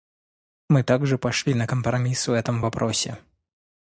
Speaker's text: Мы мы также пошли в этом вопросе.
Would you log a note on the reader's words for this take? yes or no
yes